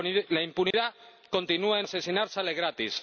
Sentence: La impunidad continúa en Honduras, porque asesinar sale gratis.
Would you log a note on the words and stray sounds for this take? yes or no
yes